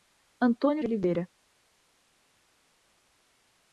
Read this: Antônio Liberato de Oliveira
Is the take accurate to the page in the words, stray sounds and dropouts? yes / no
no